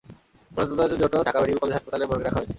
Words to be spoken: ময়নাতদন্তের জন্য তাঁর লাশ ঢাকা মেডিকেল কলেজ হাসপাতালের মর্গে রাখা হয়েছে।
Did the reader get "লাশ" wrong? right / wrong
wrong